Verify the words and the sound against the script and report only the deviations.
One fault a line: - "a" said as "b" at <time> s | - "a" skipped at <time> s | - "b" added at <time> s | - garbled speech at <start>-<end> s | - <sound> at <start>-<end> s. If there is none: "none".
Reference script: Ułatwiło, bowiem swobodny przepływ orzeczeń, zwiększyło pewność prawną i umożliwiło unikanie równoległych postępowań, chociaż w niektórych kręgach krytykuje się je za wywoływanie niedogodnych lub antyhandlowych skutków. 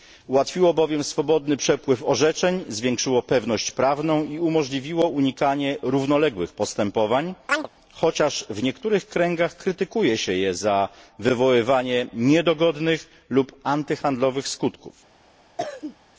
- chirp at 7.5-7.7 s
- cough at 15.6-16.0 s